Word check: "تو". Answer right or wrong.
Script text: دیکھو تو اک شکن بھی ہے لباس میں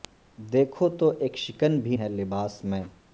right